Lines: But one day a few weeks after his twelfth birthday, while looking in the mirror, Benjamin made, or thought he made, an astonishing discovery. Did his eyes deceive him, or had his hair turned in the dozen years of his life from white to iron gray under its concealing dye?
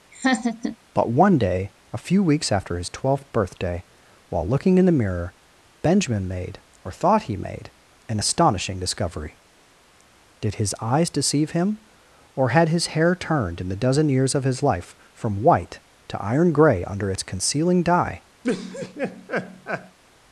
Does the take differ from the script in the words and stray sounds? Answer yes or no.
yes